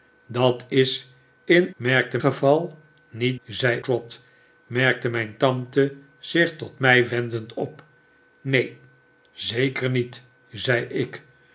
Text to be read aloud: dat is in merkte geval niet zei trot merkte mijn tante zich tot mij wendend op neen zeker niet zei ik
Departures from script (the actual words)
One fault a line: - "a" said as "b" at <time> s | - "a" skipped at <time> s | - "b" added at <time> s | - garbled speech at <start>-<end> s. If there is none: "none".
none